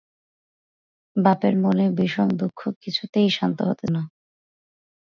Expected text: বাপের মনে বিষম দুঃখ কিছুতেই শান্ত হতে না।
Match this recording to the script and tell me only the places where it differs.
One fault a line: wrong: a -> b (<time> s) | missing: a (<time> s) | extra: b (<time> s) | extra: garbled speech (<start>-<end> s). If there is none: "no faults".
no faults